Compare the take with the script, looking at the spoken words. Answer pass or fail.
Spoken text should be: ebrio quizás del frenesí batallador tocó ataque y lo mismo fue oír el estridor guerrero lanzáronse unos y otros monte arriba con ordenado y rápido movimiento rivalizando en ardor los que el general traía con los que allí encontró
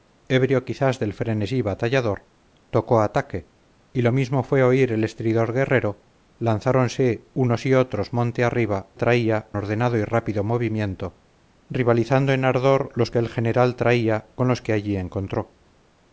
fail